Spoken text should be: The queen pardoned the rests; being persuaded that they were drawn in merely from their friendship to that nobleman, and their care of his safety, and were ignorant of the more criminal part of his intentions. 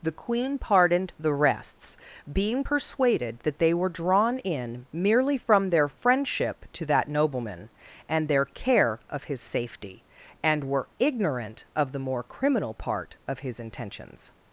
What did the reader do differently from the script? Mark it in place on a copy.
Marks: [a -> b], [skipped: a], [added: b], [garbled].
The queen pardoned the rests; being persuaded that they were drawn in merely from their friendship to that nobleman, and their care of his safety, and were ignorant of the more criminal part of his intentions.